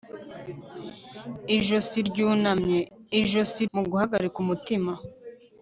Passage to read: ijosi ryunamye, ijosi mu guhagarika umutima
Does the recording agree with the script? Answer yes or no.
yes